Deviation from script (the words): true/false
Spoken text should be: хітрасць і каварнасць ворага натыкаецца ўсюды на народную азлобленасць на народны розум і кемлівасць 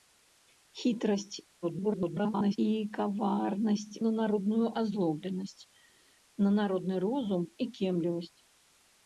true